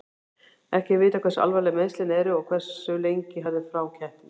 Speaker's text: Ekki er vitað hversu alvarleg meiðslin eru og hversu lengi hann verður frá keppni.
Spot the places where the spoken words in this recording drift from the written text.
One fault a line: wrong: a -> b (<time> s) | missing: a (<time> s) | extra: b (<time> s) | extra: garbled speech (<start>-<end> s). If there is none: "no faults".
missing: hann (3.5 s)